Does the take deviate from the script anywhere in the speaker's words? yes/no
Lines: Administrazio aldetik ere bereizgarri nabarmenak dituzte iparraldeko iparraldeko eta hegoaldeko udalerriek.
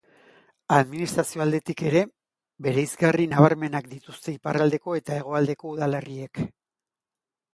yes